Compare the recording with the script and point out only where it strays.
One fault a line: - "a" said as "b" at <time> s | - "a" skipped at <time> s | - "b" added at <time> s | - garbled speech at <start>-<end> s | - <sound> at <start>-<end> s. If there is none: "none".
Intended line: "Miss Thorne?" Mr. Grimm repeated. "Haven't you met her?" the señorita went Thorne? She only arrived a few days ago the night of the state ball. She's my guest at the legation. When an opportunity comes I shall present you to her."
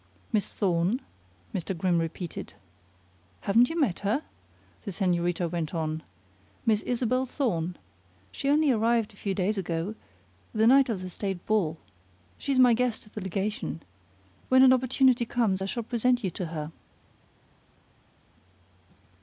- "on Miss Isabel" added at 5.8 s